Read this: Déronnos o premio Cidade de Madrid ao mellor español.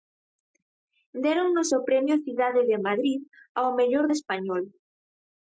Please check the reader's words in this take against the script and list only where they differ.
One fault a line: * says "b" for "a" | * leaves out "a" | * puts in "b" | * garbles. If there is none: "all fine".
all fine